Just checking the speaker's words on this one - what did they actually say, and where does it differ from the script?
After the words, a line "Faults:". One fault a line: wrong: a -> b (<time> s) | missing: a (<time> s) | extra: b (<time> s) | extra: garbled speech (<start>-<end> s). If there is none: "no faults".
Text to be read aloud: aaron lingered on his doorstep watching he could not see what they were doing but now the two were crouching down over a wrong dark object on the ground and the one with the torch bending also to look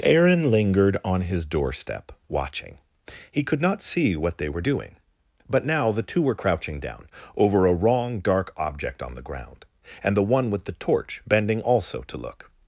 aaron lingered on his doorstep watching he could not see what they were doing but now the two were crouching down over a wrong dark object on the ground and the one with the torch bending also to look
Faults:
no faults